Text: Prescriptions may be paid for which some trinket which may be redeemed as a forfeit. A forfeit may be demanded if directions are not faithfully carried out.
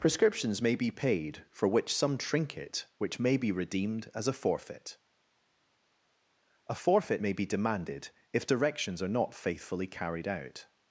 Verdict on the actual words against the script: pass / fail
pass